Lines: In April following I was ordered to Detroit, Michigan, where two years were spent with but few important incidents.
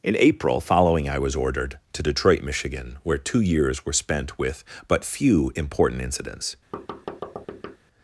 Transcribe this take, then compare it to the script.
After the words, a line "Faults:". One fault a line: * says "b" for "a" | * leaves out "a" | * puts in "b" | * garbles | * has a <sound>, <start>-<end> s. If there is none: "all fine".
In April following I was ordered to Detroit, Michigan, where two years were spent with but few important incidents.
Faults:
* has a thud, 6.7-7.8 s